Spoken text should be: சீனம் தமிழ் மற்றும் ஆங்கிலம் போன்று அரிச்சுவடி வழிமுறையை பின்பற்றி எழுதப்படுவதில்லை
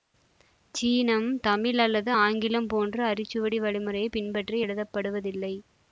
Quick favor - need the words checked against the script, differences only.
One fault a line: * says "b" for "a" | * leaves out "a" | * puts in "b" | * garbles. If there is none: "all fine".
* says "அல்லது" for "மற்றும்"